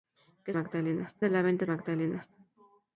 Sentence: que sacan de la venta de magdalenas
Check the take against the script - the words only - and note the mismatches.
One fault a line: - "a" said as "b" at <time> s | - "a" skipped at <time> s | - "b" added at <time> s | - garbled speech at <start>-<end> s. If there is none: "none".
- "sacan" said as "magdalenas" at 0.5 s
- "de" skipped at 1.7 s